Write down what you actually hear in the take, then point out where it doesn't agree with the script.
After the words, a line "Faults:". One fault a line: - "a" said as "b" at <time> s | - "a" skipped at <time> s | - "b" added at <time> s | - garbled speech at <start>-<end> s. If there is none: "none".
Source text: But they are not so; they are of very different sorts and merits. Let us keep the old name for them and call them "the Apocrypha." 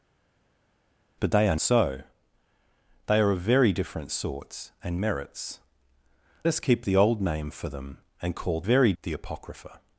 But they are so; they are of very different sorts and merits. Us keep the old name for them and call very "the Apocrypha."
Faults:
- "not" skipped at 1.6 s
- "Let" skipped at 5.6 s
- "them" said as "very" at 8.6 s